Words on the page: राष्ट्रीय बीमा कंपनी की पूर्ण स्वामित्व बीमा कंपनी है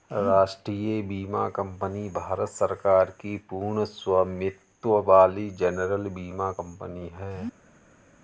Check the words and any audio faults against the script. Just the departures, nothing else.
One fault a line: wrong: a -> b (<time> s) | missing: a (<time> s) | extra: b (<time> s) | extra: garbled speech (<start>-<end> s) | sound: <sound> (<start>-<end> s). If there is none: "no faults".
extra: भारत सरकार (2.1 s)
extra: वाली जनरल (5.0 s)